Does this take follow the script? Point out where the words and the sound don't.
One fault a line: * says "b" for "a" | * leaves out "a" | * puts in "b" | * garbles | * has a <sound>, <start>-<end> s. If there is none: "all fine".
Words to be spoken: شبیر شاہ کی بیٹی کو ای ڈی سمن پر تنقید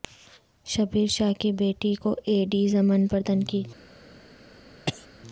* has a cough, 4.9-5.1 s